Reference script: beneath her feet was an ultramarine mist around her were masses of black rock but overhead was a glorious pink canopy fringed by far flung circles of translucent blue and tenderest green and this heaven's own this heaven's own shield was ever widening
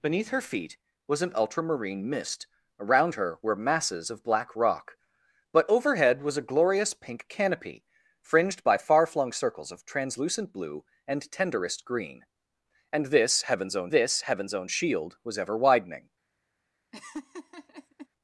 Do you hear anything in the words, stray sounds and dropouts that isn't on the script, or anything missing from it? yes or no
yes